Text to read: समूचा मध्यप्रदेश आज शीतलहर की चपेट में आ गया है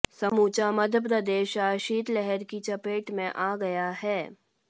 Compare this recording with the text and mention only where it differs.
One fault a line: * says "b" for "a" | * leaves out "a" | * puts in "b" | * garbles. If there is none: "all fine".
all fine